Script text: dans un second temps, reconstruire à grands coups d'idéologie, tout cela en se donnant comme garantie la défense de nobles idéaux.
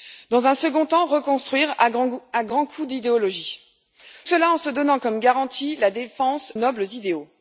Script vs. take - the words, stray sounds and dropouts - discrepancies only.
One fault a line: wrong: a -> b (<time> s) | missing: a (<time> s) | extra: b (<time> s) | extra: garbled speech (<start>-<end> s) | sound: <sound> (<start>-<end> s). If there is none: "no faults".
missing: tout (3.6 s)
missing: de (6.5 s)